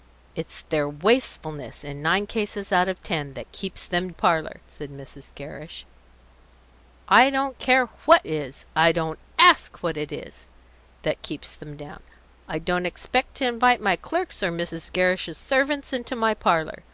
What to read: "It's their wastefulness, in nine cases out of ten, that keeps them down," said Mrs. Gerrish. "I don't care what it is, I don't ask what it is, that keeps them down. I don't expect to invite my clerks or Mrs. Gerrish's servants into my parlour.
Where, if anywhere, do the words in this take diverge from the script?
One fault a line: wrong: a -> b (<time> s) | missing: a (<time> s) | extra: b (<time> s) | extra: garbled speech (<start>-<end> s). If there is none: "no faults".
wrong: down -> parlour (4.1 s)
missing: it (8.2 s)